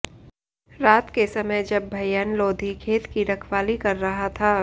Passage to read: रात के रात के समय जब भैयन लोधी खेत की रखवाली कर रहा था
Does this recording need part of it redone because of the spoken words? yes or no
yes